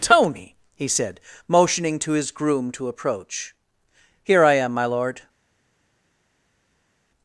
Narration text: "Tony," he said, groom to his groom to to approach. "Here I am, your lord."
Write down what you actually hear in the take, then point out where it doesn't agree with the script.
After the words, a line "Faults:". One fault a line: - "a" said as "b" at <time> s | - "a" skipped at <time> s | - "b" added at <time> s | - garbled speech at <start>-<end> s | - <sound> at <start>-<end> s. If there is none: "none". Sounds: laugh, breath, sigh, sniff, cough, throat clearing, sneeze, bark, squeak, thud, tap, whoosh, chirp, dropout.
"Tony," he said, motioning to his groom to approach. "Here I am, my lord."
Faults:
- "groom" said as "motioning" at 1.5 s
- "to" skipped at 2.9 s
- "your" said as "my" at 4.7 s